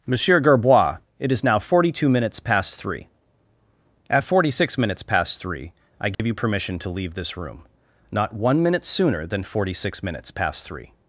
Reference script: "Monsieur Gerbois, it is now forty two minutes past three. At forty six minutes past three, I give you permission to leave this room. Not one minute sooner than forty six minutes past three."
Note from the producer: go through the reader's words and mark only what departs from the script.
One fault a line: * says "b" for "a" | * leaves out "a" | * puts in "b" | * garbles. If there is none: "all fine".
all fine